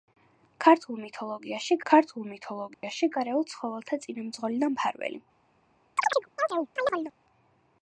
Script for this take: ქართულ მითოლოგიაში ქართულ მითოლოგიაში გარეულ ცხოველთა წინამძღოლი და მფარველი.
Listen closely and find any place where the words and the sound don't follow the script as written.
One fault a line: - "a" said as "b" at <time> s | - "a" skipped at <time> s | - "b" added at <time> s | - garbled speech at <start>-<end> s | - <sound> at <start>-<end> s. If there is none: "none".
- dropout at 2.7-2.8 s
- chirp at 6.0-7.1 s